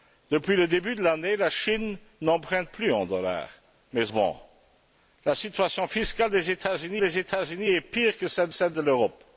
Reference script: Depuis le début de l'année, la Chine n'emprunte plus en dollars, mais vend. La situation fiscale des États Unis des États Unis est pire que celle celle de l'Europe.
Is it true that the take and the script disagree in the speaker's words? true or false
false